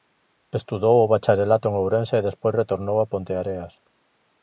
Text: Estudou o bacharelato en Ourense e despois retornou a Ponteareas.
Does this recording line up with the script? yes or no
yes